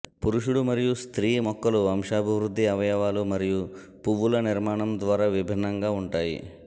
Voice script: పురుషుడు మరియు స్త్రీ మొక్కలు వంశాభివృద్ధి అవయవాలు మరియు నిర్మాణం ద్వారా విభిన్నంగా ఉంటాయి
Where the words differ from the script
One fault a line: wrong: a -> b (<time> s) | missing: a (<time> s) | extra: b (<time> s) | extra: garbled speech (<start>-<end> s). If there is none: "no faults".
extra: పువ్వుల (4.1 s)